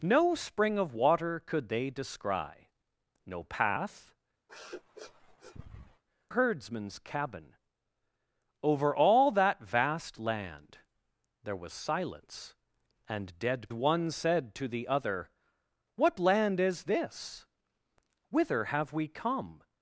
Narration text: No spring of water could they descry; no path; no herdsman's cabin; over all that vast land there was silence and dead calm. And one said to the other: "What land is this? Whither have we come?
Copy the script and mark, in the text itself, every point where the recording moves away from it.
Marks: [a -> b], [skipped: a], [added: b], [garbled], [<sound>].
No spring of water could they descry; no path; [skipped: no] [sniff] herdsman's cabin; over all that vast land there was silence and dead [skipped: calm. And] one said to the other: "What land is this? Whither have we come?